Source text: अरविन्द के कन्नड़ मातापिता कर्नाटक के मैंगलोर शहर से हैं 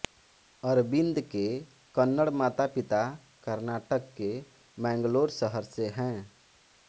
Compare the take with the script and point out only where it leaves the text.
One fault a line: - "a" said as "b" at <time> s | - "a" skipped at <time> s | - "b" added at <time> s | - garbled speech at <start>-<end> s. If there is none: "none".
none